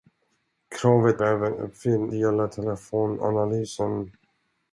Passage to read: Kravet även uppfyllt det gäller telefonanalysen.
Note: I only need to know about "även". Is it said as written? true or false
true